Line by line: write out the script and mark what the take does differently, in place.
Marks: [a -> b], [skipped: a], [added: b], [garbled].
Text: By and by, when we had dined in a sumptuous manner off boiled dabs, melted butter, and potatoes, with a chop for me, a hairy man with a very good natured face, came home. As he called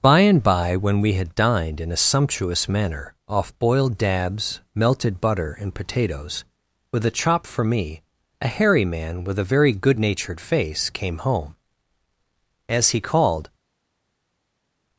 By and by, when we had dined in a sumptuous manner off boiled dabs, melted butter, and potatoes, with a chop for me, a hairy man with a very good natured face, came home. As he called